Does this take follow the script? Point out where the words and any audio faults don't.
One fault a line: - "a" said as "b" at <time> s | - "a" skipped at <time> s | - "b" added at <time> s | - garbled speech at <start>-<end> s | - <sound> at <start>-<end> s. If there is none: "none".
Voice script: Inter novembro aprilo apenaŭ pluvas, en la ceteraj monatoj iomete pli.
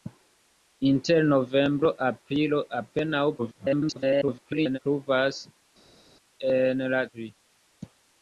- garbled speech at 3.4-4.8 s
- "ceteraj monatoj iomete" skipped at 7.0 s